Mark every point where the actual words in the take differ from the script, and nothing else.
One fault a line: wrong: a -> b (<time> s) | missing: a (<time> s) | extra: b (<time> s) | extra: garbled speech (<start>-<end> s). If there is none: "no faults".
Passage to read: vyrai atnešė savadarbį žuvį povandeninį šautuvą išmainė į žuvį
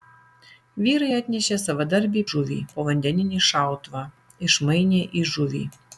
no faults